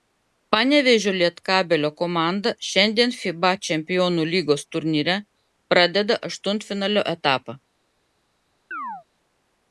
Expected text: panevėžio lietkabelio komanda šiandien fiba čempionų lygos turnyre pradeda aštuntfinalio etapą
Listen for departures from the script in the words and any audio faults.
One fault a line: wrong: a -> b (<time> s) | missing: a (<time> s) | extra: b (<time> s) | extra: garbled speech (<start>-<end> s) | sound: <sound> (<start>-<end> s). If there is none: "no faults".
sound: chirp (8.7-9.0 s)